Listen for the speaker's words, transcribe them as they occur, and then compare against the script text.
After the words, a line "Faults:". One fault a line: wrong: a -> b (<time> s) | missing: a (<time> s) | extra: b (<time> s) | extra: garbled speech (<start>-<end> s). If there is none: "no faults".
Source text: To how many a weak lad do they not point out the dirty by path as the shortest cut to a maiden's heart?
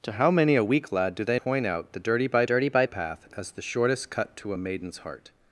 To how many a weak lad do they point out the dirty by dirty by path as the shortest cut to a maiden's heart?
Faults:
missing: not (1.4 s)
extra: dirty by (2.4 s)